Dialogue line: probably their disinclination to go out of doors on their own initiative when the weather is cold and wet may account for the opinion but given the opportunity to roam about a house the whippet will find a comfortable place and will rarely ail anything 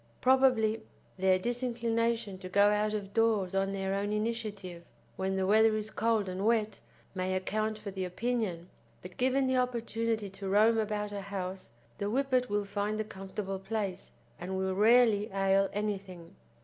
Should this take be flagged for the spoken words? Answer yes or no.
no